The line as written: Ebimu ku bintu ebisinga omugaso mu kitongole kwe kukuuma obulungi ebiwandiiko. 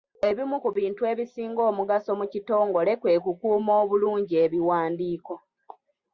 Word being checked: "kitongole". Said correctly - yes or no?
yes